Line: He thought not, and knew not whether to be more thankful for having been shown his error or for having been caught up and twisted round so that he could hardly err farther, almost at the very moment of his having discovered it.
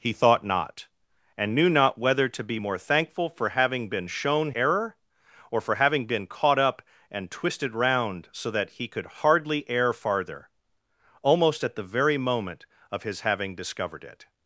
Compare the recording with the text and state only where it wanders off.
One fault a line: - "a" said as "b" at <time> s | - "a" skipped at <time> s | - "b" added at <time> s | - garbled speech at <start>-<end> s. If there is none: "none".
- "his" skipped at 4.5 s